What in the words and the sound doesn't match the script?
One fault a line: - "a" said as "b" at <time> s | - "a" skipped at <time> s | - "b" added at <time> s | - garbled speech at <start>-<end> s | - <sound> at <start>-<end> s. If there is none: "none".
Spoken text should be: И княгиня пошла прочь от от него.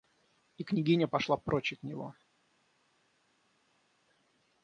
none